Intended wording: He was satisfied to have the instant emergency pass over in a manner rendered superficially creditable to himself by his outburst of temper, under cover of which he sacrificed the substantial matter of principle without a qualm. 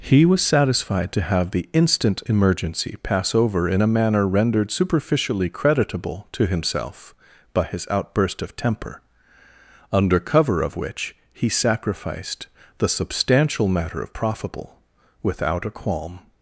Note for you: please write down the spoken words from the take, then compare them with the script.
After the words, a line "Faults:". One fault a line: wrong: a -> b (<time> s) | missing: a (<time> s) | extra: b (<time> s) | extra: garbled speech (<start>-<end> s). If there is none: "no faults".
He was satisfied to have the instant emergency pass over in a manner rendered superficially creditable to himself by his outburst of temper, under cover of which he sacrificed the substantial matter of profitable without a qualm.
Faults:
wrong: principle -> profitable (14.1 s)